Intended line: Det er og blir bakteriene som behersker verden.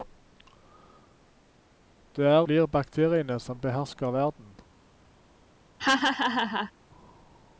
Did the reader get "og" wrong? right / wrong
wrong